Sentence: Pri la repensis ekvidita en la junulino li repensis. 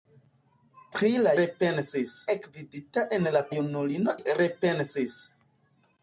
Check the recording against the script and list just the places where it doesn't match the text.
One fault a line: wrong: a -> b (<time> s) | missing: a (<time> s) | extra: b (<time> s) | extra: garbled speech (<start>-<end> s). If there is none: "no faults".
no faults